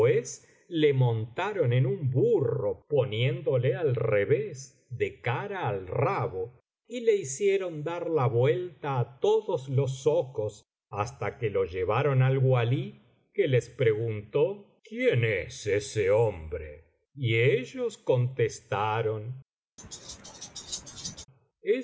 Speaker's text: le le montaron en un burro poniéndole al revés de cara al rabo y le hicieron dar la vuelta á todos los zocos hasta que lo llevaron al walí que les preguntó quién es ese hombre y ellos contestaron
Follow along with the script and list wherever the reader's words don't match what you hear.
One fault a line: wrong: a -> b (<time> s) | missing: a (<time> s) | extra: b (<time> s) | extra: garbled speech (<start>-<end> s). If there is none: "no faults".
missing: le (0.9 s)